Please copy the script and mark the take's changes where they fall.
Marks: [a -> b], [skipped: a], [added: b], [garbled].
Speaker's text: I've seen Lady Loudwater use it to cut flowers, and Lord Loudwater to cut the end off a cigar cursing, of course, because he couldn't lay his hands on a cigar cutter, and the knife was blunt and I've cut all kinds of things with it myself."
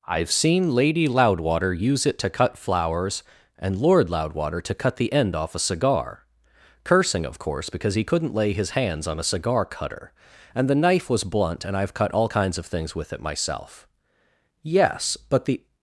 I've seen Lady Loudwater use it to cut flowers, and Lord Loudwater to cut the end off a cigar cursing, of course, because he couldn't lay his hands on a cigar cutter, and the knife was blunt and I've cut all kinds of things with it myself." [added: Yes but the]